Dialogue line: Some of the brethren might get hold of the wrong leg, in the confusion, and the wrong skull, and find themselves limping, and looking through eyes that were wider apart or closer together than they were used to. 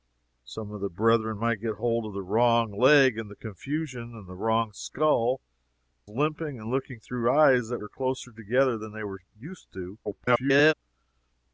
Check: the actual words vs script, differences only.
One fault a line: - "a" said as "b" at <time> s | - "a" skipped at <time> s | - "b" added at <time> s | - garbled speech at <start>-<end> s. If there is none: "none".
- "find themselves" skipped at 6.1 s
- "were wider apart" skipped at 7.8 s
- garbled speech at 10.0-10.7 s